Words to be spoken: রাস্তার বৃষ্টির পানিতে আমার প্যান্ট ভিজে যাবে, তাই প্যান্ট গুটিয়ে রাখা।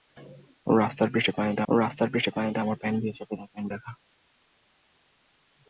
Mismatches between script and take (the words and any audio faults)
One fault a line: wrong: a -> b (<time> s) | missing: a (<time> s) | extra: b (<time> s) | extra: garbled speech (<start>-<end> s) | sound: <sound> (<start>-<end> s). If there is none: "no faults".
extra: রাস্তার বৃষ্টির পানিতে (1.7 s)
missing: গুটিয়ে (3.7 s)